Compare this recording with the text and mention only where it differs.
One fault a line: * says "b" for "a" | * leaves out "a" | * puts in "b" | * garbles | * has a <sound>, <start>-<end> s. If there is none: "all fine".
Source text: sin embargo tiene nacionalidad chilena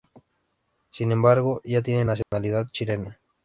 * puts in "ya"
* has a dropout, 2.2-2.3 s